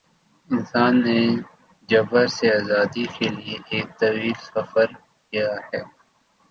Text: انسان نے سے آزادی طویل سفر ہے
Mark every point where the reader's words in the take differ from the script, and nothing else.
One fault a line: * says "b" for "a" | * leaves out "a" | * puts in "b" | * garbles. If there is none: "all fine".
* puts in "جبر"
* puts in "کے لیے ایک"
* puts in "کیا"